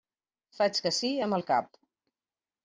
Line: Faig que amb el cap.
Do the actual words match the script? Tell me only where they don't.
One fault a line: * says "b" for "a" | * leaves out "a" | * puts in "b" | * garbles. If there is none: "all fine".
* puts in "sí"